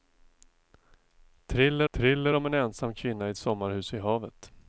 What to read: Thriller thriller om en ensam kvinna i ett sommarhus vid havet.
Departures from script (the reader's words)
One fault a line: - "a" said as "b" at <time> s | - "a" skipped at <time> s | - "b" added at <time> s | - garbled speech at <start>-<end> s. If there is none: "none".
none